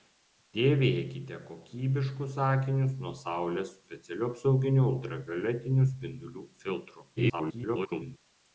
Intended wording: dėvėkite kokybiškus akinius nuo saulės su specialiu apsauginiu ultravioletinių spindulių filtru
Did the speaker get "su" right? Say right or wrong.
wrong